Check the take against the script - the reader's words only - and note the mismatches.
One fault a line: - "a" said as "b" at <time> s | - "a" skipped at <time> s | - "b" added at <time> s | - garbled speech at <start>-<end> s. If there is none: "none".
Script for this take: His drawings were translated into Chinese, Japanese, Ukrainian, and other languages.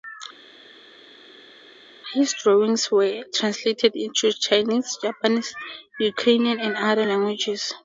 none